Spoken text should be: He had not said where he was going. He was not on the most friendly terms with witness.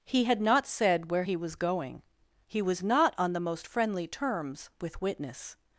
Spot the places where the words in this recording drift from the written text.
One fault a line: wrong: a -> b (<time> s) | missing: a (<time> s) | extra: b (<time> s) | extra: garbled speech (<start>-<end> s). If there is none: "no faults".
no faults